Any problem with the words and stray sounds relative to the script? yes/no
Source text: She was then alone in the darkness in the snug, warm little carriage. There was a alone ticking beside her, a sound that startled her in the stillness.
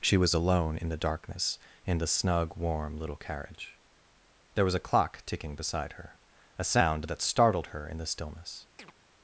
yes